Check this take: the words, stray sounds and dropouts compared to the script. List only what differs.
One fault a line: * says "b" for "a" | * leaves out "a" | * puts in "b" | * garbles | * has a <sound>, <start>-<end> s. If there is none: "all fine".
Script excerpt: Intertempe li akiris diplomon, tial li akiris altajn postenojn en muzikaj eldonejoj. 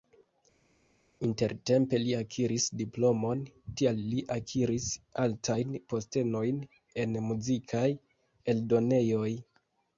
all fine